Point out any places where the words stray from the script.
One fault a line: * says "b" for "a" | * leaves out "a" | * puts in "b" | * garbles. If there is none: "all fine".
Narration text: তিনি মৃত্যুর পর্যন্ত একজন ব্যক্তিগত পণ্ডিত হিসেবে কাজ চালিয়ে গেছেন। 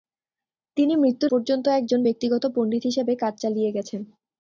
all fine